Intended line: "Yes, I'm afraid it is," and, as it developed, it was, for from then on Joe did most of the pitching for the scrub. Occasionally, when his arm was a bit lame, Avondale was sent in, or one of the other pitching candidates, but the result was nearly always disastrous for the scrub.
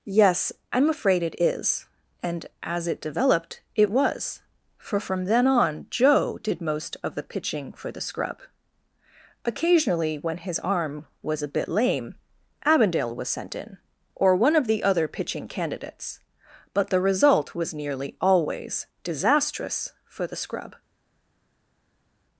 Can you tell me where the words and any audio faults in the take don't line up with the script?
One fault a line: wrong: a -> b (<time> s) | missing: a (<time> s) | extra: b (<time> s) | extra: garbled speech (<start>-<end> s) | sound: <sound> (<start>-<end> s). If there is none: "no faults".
no faults